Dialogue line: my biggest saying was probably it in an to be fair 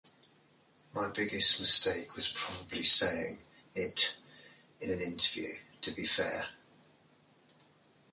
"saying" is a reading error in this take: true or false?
true